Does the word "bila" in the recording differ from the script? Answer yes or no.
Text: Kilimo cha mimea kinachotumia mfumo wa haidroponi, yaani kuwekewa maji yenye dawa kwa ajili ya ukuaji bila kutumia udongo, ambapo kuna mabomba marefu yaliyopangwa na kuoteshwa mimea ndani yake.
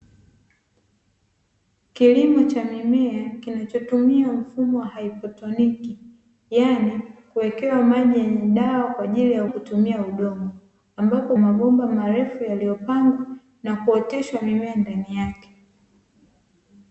yes